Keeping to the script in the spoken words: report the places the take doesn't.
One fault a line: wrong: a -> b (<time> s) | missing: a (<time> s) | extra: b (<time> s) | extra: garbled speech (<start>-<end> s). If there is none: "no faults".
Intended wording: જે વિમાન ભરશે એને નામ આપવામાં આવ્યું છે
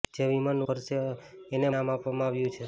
no faults